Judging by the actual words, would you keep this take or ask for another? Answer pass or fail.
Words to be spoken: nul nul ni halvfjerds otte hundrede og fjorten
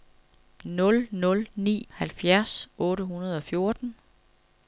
pass